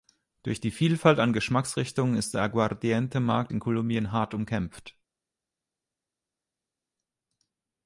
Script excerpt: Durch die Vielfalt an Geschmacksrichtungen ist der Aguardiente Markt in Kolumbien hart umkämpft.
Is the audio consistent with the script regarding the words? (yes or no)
yes